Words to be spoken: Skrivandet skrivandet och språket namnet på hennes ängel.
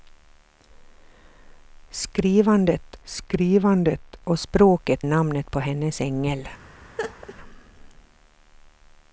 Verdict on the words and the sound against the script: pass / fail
fail